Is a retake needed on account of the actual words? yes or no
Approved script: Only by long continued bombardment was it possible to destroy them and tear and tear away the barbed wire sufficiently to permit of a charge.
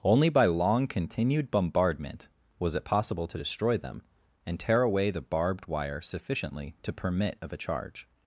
yes